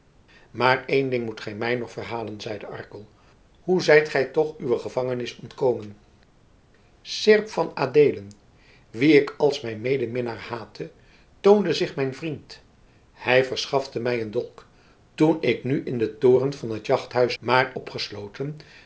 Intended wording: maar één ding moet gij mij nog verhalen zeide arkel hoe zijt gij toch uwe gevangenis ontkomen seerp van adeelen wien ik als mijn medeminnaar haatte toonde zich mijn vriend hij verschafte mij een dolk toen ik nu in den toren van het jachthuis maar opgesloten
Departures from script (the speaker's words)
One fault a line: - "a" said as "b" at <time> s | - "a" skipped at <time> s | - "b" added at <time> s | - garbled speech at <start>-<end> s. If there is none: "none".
none